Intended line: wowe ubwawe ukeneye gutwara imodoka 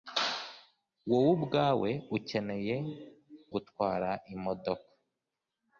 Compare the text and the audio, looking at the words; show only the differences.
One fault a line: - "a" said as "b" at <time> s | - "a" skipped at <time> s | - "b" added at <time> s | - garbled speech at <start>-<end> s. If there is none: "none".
none